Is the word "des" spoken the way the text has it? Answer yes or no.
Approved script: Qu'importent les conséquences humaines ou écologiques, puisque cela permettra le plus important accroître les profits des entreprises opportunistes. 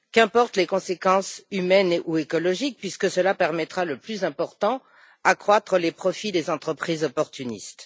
yes